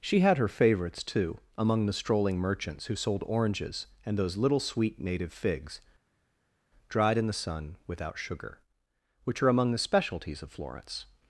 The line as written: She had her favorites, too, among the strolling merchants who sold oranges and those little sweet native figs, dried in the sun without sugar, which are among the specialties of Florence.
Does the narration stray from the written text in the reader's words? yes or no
no